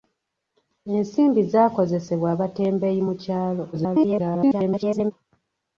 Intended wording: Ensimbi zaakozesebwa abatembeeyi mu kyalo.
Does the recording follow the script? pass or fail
fail